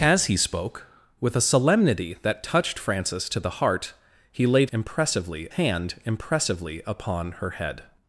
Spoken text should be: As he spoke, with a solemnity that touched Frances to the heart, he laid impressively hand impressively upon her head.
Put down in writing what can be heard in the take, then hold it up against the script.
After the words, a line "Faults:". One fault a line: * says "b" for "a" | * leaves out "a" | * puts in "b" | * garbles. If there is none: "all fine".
As he spoke, with a solemnity that touched Frances to the heart, he laid impressively hand impressively upon her head.
Faults:
all fine